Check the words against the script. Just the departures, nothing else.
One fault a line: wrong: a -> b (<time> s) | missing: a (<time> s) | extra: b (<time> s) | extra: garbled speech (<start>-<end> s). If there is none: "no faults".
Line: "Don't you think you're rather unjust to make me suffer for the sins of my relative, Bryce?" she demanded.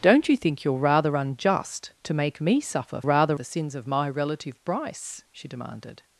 wrong: for -> rather (3.0 s)